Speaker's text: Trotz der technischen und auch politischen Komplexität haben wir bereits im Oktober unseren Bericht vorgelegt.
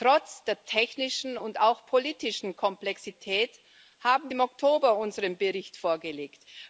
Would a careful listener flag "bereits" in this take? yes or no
yes